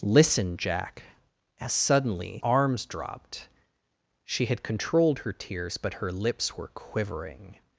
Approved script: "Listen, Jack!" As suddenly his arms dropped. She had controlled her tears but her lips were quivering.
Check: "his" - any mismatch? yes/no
yes